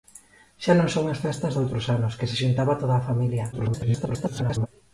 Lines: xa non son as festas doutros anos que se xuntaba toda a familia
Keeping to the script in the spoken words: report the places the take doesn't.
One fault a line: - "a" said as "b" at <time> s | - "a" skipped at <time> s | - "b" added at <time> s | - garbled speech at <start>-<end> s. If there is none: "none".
- garbled speech at 3.5-4.7 s